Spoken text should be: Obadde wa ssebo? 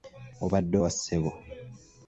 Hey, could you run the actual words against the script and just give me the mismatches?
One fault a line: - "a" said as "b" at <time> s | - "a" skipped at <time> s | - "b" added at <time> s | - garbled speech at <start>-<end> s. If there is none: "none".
none